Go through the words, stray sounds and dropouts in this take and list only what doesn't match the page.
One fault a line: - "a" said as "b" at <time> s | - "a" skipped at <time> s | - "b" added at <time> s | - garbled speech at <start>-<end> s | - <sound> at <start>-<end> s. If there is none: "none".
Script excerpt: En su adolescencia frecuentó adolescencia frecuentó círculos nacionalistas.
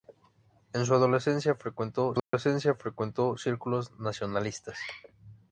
- dropout at 2.2-2.3 s